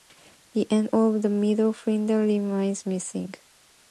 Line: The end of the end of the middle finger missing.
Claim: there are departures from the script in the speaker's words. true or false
true